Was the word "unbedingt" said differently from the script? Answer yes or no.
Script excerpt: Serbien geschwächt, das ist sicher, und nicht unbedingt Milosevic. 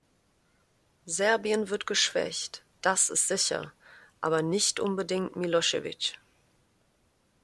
no